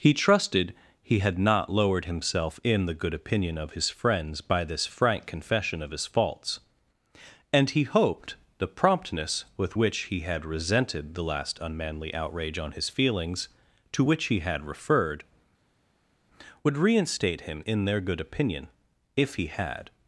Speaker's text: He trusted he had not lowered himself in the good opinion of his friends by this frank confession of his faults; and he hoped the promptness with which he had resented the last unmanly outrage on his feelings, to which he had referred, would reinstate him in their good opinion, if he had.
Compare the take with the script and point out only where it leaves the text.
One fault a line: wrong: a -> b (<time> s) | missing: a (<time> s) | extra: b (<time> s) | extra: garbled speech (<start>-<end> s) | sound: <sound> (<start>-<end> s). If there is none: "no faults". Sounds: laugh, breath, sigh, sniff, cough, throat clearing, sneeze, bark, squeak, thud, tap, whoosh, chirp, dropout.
no faults